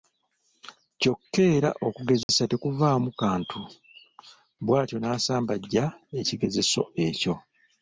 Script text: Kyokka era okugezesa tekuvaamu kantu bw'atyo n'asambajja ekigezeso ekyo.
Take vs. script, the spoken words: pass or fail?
pass